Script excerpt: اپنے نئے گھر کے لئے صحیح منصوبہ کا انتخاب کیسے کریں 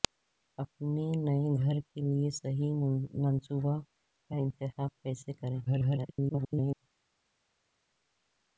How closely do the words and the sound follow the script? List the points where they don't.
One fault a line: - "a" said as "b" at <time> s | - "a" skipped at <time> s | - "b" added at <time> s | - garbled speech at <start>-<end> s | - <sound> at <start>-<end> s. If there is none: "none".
- garbled speech at 5.7-6.8 s